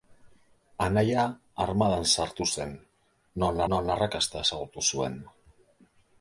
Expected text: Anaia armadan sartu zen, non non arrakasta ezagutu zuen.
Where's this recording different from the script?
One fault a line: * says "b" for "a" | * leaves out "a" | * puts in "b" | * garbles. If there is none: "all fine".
all fine